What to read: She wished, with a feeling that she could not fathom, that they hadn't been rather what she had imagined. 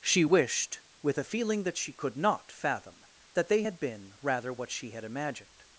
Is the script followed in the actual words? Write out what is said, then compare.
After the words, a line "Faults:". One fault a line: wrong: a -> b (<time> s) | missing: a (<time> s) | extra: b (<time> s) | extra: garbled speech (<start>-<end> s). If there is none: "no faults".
She wished, with a feeling that she could not fathom, that they had been rather what she had imagined.
Faults:
wrong: hadn't -> had (3.6 s)